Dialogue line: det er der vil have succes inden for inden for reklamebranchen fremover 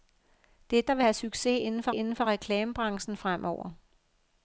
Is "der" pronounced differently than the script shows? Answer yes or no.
no